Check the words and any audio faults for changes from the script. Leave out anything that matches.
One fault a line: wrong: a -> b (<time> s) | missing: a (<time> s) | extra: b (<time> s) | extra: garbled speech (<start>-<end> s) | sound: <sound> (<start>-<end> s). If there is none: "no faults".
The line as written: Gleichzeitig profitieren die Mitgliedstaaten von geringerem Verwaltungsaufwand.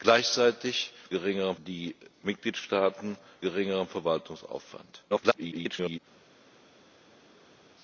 wrong: profitieren -> geringerem (1.1 s)
missing: von (3.2 s)
extra: garbled speech (5.1-6.0 s)